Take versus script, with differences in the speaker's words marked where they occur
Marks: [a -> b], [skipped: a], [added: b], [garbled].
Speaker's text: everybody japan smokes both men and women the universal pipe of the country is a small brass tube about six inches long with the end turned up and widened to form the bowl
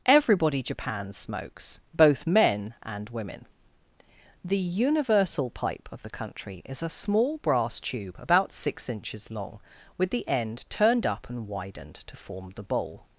everybody japan smokes both men and women the universal pipe of the country is a small brass tube about six inches long with the end turned up and widened to form the bowl